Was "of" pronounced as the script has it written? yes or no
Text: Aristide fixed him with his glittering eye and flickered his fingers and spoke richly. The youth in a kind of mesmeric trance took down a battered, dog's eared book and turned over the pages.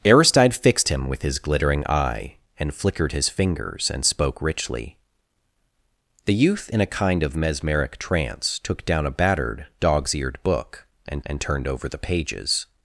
yes